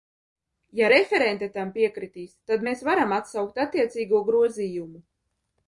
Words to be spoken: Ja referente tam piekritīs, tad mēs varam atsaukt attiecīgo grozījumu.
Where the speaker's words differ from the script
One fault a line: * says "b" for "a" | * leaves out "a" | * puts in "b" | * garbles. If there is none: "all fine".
all fine